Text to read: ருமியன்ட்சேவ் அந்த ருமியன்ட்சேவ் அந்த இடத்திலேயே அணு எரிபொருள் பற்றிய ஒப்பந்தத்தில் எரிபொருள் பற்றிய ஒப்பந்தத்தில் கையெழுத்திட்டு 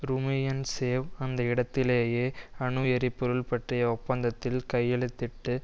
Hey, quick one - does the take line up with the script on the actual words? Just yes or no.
no